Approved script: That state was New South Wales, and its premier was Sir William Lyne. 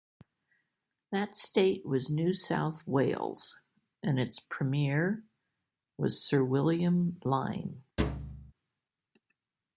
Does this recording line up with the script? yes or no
yes